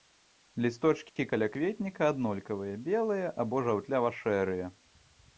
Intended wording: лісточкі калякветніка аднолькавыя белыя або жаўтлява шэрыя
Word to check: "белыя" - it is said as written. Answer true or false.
true